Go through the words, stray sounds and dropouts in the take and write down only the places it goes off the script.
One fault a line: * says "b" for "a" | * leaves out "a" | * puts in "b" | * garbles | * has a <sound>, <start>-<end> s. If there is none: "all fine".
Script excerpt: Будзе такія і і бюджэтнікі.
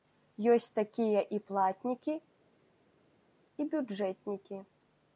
* says "Ёсць" for "Будзе"
* puts in "платнікі"